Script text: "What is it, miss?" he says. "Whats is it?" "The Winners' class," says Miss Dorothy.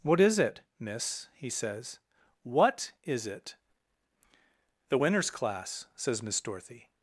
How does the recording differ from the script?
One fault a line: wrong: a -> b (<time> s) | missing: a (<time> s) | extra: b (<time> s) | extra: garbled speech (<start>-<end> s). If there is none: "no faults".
wrong: Whats -> What (2.4 s)